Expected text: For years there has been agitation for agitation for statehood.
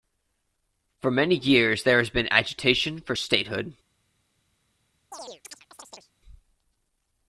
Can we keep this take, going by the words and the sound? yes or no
no